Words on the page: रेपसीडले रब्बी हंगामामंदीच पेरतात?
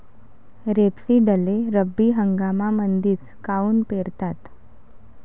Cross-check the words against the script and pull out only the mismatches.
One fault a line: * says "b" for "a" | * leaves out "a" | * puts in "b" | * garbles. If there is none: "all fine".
* puts in "काऊन"